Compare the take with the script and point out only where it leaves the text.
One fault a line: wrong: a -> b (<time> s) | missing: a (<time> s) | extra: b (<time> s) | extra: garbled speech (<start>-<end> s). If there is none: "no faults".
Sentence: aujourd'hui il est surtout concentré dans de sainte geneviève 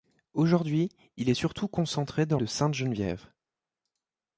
no faults